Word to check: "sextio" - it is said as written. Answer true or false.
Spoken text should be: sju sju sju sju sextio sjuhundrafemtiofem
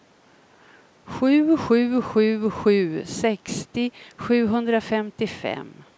true